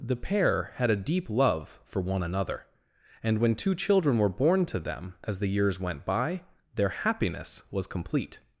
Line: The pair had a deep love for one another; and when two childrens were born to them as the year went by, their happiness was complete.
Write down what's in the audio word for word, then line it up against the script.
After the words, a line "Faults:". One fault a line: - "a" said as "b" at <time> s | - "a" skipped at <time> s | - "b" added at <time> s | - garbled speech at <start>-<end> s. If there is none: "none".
The pair had a deep love for one another; and when two children were born to them as the years went by, their happiness was complete.
Faults:
- "childrens" said as "children" at 3.8 s
- "year" said as "years" at 5.5 s